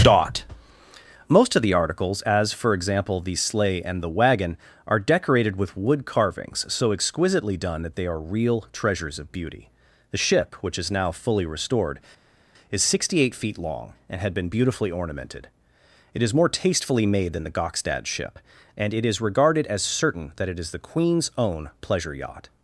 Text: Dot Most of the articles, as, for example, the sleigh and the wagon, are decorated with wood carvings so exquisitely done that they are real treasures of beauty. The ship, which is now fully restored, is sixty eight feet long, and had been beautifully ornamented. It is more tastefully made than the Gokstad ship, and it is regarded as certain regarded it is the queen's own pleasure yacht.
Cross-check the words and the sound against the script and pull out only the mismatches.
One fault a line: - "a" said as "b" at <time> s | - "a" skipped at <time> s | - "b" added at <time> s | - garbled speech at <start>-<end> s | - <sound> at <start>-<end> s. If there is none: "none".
- "regarded" said as "that" at 20.4 s